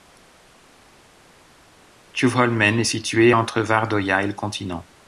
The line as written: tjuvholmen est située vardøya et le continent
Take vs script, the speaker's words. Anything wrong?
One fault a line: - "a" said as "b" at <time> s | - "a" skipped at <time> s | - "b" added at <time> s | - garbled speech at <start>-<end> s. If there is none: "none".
- "entre" added at 3.3 s